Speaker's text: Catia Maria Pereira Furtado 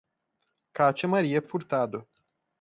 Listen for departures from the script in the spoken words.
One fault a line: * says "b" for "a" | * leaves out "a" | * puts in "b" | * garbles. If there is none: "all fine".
* leaves out "Pereira"